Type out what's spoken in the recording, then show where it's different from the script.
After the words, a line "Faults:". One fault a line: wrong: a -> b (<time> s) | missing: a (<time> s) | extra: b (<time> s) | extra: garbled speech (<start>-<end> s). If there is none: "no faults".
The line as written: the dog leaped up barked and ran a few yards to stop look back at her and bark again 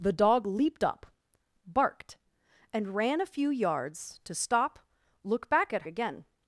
the dog leaped up barked and ran a few yards to stop look back at again
Faults:
missing: her and bark (5.8 s)